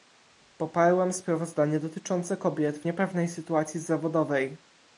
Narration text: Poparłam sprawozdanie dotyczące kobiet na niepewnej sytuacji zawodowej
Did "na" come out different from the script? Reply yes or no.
yes